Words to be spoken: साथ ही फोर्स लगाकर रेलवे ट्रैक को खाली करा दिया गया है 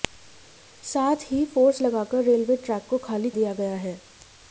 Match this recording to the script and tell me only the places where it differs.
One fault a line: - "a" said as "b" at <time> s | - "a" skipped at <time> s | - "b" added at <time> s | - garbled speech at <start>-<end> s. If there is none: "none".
- "करा" skipped at 3.3 s